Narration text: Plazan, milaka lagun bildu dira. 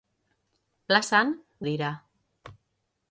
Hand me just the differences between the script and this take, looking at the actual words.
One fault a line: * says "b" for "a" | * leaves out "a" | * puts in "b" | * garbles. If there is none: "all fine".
* leaves out "milaka lagun bildu"